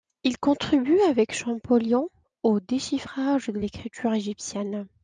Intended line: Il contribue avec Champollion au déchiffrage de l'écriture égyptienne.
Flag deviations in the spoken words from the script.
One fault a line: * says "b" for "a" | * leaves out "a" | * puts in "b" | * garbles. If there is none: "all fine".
all fine